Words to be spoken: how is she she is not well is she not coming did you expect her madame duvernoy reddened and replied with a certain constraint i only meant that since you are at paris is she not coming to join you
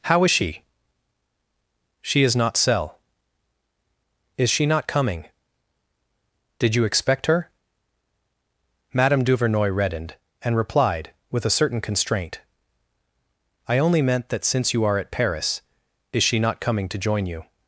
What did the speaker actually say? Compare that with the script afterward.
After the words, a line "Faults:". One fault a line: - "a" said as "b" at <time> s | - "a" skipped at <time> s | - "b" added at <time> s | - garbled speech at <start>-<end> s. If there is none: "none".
how is she she is not cell is she not coming did you expect her madame duvernoy reddened and replied with a certain constraint i only meant that since you are at paris is she not coming to join you
Faults:
- "well" said as "cell" at 2.6 s